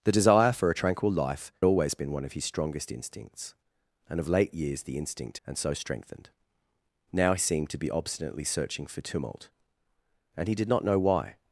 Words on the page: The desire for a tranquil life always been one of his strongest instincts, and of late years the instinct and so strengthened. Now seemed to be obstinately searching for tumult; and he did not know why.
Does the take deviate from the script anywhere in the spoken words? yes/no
no